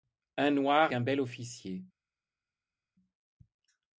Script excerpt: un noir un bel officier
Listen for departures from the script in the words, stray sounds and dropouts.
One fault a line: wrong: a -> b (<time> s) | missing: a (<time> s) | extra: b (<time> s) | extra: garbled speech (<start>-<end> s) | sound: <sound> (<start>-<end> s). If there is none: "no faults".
no faults